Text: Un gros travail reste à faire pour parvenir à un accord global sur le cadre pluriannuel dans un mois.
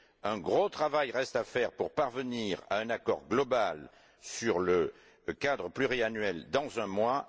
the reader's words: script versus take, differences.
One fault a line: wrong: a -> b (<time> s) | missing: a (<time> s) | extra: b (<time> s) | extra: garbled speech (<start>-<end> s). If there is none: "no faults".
no faults